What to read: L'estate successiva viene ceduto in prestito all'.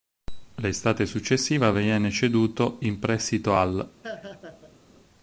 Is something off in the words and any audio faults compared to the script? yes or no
yes